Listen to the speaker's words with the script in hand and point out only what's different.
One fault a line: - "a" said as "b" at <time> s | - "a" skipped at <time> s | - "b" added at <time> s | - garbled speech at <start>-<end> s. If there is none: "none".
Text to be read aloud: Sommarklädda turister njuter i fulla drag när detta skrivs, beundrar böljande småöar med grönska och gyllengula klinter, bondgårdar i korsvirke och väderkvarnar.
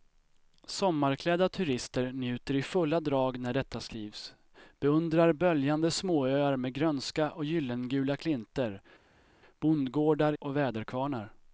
- "i korsvirke" skipped at 10.3 s